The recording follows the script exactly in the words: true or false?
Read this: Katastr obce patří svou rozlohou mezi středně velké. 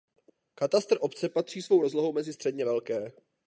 true